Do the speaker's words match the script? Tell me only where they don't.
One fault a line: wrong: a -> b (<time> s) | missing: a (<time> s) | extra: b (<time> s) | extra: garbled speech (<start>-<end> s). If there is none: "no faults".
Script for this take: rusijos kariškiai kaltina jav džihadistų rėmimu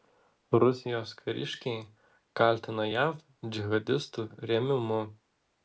no faults